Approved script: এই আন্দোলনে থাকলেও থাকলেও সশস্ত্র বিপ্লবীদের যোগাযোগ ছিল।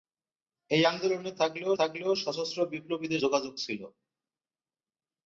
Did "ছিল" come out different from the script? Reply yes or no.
no